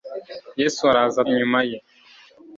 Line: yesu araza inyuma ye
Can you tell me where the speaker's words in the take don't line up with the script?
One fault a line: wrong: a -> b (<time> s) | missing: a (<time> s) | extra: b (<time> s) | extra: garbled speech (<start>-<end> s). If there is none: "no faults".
no faults